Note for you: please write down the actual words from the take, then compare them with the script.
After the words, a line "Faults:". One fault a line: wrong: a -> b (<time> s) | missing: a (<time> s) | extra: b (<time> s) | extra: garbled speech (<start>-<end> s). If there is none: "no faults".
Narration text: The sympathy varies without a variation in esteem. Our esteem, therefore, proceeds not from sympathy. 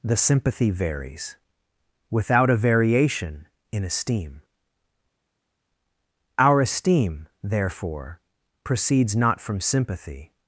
The sympathy varies without a variation in esteem. Our esteem, therefore, proceeds not from sympathy.
Faults:
no faults